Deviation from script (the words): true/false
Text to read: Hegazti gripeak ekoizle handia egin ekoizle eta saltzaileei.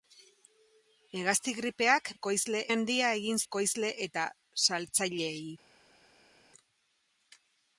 false